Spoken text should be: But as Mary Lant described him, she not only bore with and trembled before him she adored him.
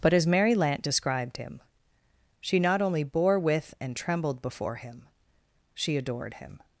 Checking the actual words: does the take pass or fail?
pass